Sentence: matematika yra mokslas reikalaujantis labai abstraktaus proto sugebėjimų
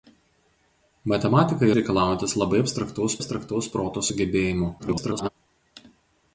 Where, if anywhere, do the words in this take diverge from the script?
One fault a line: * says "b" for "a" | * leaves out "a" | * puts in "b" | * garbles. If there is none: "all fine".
* leaves out "yra mokslas"
* puts in "abstraktaus"
* garbles